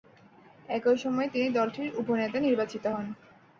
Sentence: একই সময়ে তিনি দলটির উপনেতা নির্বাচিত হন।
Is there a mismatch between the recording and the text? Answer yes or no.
no